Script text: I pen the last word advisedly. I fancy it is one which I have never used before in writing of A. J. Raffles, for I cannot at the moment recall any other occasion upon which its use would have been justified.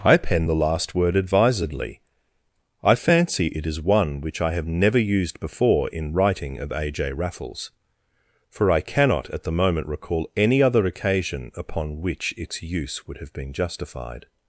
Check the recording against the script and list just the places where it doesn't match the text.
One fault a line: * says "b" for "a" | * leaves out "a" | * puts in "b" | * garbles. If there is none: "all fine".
all fine